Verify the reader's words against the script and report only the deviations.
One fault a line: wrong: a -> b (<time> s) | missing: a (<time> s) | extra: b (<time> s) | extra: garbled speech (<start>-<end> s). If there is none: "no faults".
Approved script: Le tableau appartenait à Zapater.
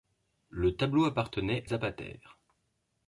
missing: à (1.7 s)